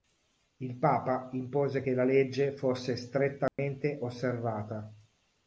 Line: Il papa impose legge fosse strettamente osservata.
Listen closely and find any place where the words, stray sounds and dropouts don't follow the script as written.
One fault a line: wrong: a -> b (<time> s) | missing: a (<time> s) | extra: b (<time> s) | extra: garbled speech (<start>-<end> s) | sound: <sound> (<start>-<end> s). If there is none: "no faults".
extra: che la (1.8 s)
sound: dropout (3.5-3.6 s)